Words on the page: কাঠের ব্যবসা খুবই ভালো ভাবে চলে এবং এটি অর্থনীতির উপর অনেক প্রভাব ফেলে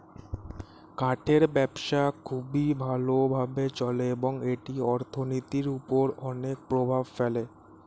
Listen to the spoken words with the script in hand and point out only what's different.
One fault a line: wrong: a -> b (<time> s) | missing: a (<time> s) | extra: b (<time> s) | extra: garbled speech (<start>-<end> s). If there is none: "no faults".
no faults